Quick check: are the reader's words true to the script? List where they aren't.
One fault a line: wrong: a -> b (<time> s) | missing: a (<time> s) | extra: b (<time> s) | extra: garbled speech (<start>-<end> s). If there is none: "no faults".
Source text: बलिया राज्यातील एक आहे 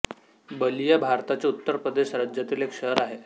extra: भारताच्या उत्तर प्रदेश (1.0 s)
extra: शहर (2.7 s)